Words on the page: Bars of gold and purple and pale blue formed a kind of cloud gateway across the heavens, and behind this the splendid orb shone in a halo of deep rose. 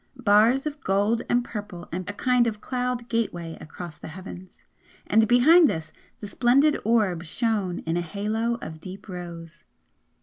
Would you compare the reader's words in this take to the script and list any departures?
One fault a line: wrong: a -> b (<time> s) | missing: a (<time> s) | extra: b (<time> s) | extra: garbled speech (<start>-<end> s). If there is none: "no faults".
missing: pale blue formed (2.1 s)